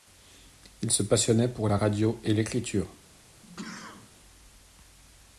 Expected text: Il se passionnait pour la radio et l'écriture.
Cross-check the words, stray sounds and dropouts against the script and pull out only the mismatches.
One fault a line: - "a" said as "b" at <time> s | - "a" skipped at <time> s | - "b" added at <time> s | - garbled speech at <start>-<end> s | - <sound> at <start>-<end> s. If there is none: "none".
- sneeze at 3.4-4.1 s